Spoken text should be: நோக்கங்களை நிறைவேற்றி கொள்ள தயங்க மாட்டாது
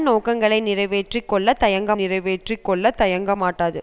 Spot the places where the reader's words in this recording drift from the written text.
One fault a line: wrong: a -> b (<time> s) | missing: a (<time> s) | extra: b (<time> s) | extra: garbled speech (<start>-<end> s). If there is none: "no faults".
extra: நிறைவேற்றி கொள்ள தயங்க (1.9 s)